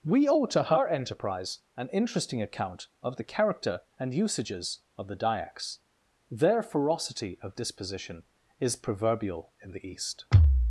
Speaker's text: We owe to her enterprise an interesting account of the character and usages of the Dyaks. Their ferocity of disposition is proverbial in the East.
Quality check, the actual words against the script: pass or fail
pass